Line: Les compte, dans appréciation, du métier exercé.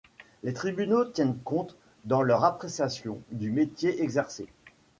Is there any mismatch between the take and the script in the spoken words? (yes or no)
yes